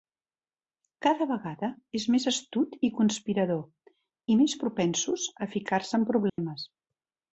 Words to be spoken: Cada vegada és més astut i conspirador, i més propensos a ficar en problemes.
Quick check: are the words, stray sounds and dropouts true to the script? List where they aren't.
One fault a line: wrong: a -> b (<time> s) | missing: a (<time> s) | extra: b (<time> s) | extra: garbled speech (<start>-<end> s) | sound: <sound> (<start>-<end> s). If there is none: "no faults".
extra: se (5.9 s)
sound: dropout (6.3-6.4 s)